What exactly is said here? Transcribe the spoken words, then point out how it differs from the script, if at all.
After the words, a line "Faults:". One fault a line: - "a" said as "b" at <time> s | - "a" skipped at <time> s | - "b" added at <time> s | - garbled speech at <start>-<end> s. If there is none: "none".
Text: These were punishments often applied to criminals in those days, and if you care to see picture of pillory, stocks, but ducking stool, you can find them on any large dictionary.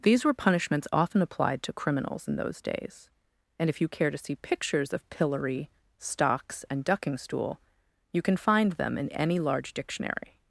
These were punishments often applied to criminals in those days, and if you care to see pictures of pillory, stocks, and ducking stool, you can find them in any large dictionary.
Faults:
- "picture" said as "pictures" at 4.3 s
- "but" said as "and" at 6.7 s
- "on" said as "in" at 9.0 s